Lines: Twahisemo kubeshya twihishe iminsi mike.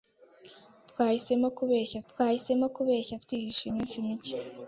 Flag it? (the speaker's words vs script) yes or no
yes